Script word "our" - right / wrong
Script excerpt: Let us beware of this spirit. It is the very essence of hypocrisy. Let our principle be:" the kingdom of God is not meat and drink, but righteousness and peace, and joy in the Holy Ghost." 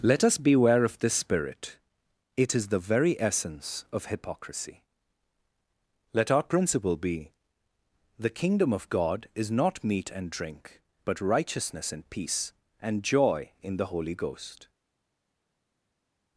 right